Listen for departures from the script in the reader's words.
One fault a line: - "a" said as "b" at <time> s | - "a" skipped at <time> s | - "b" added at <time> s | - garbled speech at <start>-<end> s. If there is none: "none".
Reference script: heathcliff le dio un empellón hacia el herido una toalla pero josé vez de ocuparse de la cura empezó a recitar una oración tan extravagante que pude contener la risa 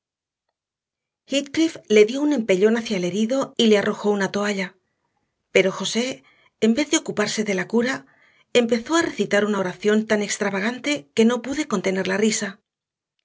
- "y le arrojó" added at 3.5 s
- "en" added at 6.6 s
- "no" added at 11.3 s